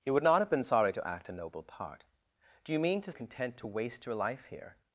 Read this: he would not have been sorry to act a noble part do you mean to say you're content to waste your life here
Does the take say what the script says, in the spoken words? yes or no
no